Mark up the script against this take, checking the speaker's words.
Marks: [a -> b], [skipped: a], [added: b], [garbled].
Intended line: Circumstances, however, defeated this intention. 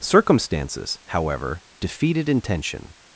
Circumstances, however, defeated [skipped: this] intention.